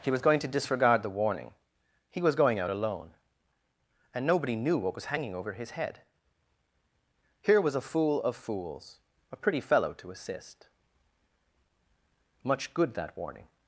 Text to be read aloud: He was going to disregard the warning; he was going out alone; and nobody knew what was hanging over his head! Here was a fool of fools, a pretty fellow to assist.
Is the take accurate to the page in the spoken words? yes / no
no